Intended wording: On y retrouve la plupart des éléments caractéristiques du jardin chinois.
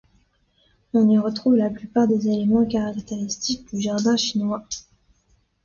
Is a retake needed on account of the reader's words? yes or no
no